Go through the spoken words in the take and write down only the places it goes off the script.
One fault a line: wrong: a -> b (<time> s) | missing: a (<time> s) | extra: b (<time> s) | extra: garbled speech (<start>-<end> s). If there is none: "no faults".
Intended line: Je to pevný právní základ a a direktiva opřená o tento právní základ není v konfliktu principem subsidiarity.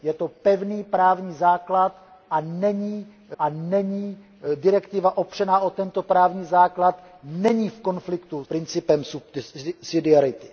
no faults